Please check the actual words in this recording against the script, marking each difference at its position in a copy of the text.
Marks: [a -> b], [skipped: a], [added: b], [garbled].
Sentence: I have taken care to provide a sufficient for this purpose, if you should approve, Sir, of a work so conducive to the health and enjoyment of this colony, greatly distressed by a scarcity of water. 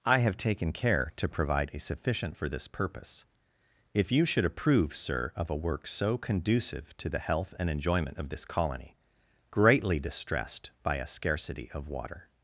I have taken care to provide a sufficient for this purpose, if you should approve, Sir, of a work so conducive to the health and enjoyment of this colony, greatly distressed by a scarcity of water.